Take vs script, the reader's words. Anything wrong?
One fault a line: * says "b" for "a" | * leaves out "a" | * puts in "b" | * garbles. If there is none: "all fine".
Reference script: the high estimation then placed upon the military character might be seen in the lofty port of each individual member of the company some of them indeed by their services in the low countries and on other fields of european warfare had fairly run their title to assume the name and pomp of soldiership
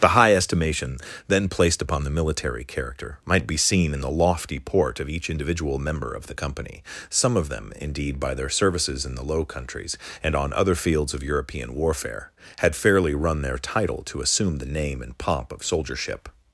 all fine